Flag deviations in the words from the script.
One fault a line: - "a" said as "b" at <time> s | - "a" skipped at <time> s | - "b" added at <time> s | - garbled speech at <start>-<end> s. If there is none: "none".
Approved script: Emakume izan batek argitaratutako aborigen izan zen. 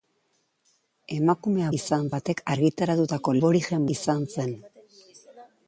none